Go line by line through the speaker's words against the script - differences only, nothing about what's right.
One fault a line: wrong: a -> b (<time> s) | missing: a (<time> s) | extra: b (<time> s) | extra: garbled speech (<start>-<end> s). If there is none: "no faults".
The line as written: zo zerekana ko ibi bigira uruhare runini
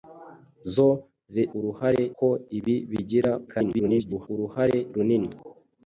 wrong: zerekana -> uruhare (1.6 s)
extra: garbled speech (3.5-4.3 s)